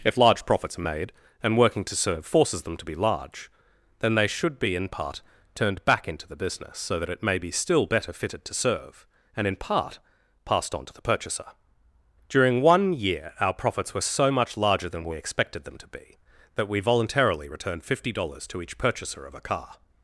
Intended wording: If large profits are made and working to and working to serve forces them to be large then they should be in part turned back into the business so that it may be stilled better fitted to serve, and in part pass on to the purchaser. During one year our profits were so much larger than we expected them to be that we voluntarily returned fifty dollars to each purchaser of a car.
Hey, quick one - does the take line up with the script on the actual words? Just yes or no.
no